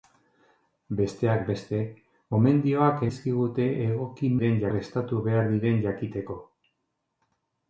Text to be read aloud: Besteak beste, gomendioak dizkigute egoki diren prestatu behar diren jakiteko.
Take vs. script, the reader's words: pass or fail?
pass